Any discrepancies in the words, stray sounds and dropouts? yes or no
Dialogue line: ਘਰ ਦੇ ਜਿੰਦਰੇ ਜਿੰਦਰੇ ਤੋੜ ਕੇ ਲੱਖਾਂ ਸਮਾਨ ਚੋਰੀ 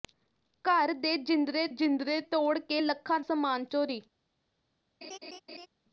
yes